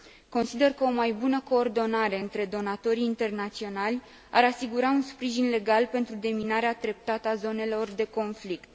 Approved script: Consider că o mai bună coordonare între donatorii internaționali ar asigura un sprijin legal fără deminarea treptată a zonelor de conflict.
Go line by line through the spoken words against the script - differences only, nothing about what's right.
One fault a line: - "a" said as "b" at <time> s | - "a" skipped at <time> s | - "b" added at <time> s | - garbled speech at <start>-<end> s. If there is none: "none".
- "fără" said as "pentru" at 5.9 s